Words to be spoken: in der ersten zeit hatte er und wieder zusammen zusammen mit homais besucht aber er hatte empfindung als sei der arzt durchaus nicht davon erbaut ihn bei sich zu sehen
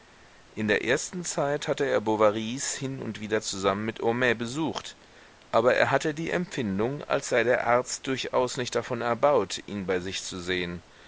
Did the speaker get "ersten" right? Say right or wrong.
right